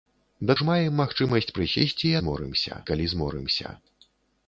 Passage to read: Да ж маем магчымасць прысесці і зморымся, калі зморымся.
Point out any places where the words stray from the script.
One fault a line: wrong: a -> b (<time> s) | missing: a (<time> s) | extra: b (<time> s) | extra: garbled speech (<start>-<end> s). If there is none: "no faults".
no faults